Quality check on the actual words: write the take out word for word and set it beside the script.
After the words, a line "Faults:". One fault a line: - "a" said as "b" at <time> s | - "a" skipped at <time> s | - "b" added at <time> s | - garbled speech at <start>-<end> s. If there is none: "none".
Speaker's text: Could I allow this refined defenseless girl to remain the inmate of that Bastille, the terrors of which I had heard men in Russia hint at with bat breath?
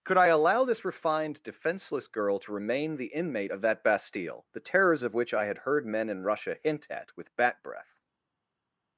Could I allow this refined defenseless girl to remain the inmate of that Bastille, the terrors of which I had heard men in Russia hint at with bat breath?
Faults:
none